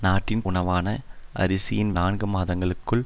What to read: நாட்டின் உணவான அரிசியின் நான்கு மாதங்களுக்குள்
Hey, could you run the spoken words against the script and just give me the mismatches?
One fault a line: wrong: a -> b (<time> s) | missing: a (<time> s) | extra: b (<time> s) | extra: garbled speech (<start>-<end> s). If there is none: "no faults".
no faults